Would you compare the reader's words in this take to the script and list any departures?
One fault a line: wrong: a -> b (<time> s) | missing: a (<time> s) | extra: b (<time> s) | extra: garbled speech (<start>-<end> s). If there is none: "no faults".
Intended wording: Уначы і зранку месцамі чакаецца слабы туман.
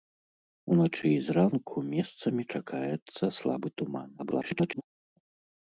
extra: garbled speech (4.2-4.8 s)